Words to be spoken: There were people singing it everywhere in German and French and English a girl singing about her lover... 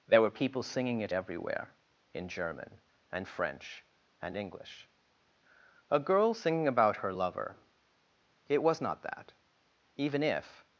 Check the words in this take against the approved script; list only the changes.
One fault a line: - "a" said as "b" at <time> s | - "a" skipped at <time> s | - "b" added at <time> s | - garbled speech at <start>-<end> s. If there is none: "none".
- "It was not that even if" added at 8.5 s